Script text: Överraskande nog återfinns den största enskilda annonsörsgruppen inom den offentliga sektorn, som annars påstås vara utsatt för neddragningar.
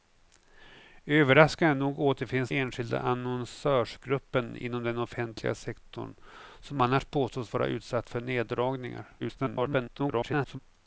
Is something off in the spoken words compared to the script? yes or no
yes